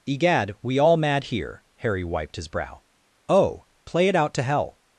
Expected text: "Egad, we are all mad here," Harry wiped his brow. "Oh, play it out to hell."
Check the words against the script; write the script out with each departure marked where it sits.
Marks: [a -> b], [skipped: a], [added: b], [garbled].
"Egad, we [skipped: are] all mad here," Harry wiped his brow. "Oh, play it out to hell."